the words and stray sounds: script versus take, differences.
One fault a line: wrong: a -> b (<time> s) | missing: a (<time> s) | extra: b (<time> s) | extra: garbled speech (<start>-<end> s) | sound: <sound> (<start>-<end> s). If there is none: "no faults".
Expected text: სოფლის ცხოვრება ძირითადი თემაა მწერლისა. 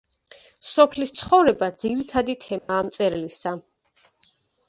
sound: dropout (2.6-2.7 s)